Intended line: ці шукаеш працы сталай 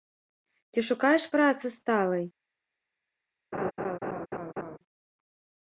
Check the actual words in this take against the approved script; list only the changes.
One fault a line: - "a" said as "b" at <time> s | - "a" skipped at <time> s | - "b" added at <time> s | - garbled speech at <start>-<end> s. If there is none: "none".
none